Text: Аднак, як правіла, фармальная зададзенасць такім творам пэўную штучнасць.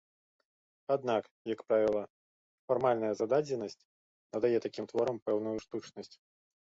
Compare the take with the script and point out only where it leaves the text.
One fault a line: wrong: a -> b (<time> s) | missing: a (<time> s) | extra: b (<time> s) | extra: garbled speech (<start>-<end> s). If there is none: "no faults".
extra: надае (4.4 s)